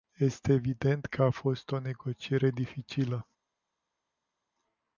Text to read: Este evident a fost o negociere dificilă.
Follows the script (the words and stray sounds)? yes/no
no